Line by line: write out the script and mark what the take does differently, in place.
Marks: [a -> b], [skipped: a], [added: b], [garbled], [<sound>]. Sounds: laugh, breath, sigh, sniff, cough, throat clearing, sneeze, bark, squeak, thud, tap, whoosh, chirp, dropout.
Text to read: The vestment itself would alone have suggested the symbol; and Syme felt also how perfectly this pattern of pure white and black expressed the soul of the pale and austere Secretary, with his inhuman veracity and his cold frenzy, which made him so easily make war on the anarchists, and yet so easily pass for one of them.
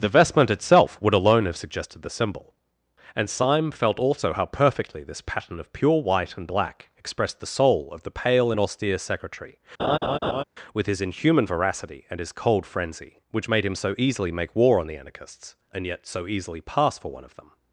The vestment itself would alone have suggested the symbol; and Syme felt also how perfectly this pattern of pure white and black expressed the soul of the pale and austere Secretary, [laugh] with his inhuman veracity and his cold frenzy, which made him so easily make war on the anarchists, and yet so easily pass for one of them.